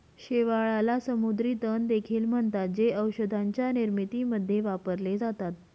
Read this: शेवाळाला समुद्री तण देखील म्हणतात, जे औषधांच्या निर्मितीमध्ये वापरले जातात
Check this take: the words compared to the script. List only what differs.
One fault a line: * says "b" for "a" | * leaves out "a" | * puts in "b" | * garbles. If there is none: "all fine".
all fine